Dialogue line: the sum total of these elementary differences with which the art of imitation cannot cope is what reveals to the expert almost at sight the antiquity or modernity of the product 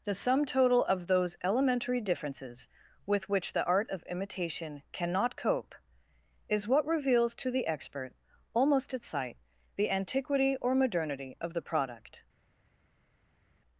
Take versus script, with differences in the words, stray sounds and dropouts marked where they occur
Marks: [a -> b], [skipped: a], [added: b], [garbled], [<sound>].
the sum total of [these -> those] elementary differences with which the art of imitation cannot cope is what reveals to the expert almost at sight the antiquity or modernity of the product